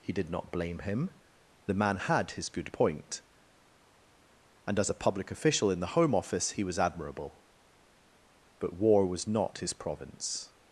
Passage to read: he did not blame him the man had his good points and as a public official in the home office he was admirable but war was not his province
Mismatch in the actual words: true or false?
true